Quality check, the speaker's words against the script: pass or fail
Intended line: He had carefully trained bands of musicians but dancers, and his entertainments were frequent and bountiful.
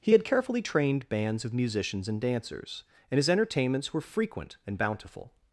fail